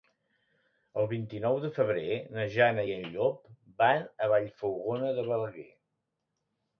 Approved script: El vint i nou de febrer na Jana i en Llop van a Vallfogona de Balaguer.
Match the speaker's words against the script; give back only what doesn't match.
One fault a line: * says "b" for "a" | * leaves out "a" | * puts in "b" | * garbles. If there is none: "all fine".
all fine